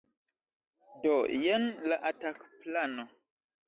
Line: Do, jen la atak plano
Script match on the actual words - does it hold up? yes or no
yes